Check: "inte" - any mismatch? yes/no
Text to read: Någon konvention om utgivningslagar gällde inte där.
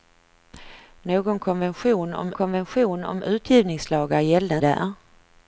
yes